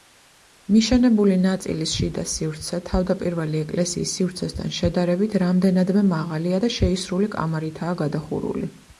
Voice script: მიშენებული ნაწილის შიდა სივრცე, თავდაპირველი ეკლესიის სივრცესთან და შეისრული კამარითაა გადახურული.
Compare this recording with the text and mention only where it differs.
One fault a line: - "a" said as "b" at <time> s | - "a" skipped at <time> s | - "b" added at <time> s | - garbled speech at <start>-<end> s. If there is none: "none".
- "შედარებით რამდენადმე მაღალია" added at 4.8 s